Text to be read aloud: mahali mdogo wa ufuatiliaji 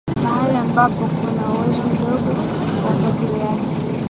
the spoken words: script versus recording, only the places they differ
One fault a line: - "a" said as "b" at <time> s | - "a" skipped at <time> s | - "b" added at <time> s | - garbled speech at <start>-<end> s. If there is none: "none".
- "ambapo kuna uwezo" added at 0.5 s